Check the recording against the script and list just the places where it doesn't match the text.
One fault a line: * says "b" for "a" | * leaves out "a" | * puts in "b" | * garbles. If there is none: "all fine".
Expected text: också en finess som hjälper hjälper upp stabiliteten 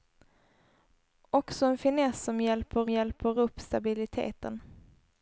all fine